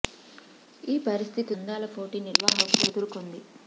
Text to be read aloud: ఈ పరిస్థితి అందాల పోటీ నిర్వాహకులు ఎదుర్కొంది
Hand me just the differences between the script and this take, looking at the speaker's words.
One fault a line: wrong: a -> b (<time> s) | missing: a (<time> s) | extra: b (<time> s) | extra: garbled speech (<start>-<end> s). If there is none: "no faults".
no faults